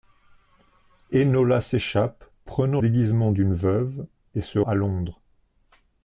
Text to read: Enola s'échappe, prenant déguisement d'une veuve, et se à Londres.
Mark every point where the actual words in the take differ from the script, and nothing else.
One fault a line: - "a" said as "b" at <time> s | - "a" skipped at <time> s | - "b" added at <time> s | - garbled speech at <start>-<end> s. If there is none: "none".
none